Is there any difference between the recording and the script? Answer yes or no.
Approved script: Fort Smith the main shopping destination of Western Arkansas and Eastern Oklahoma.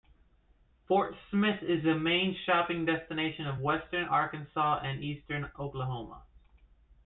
yes